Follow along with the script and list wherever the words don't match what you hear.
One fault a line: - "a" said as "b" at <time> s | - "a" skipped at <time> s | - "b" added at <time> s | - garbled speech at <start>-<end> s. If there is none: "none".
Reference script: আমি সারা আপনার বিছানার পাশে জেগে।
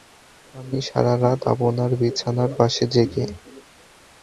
- "রাত" added at 1.2 s